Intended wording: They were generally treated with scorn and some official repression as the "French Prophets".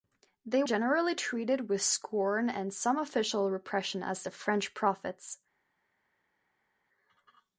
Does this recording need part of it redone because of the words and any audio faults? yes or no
yes